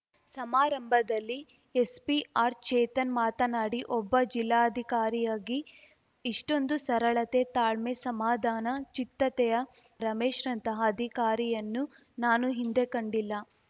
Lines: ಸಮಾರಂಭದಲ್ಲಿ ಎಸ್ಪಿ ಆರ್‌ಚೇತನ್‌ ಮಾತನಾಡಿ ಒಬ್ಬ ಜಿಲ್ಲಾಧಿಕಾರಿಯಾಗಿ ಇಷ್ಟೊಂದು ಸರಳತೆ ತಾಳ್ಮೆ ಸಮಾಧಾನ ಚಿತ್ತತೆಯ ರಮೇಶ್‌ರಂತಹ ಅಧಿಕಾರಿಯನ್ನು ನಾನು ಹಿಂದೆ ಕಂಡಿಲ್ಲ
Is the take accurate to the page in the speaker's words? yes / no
yes